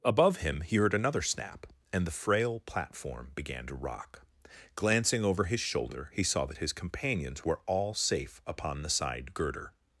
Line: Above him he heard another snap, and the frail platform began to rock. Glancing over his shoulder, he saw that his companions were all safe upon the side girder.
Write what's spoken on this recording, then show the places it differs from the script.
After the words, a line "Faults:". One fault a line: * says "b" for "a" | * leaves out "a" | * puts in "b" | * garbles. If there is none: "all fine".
Above him he heard another snap, and the frail platform began to rock. Glancing over his shoulder, he saw that his companions were all safe upon the side girder.
Faults:
all fine